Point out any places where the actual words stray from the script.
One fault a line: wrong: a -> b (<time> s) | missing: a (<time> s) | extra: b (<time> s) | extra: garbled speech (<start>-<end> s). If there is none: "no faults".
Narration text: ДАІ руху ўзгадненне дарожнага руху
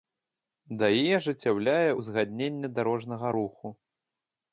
wrong: руху -> ажыццяўляе (1.2 s)